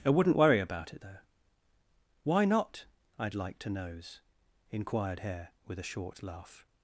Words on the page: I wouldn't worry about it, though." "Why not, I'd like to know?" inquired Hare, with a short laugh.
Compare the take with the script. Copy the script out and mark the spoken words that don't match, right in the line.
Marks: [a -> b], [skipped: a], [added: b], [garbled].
I wouldn't worry about it, though." "Why not, I'd like to [know?" -> knows] inquired Hare, with a short laugh.